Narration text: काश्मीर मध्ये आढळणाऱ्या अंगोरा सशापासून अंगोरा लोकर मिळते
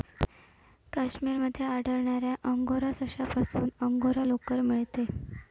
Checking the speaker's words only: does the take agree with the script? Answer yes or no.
yes